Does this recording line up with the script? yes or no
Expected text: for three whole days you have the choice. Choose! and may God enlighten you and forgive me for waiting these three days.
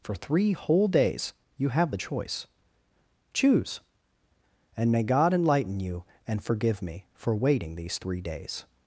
yes